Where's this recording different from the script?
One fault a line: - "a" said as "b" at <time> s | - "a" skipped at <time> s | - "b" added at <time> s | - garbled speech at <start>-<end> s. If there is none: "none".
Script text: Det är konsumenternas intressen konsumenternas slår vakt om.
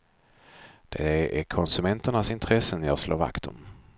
- "konsumenternas" said as "jag" at 2.8 s